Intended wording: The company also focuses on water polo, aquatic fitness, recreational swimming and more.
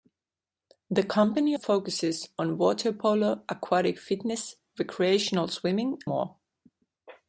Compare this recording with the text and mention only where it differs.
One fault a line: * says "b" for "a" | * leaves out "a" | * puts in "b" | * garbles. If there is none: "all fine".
* leaves out "also"
* leaves out "and"